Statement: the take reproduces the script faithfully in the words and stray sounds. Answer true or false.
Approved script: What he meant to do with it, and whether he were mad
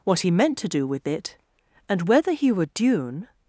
false